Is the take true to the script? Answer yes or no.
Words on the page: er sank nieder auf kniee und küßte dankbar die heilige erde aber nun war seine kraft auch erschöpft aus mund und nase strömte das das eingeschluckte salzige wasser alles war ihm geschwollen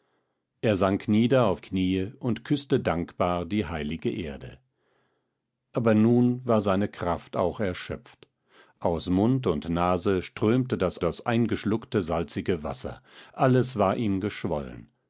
yes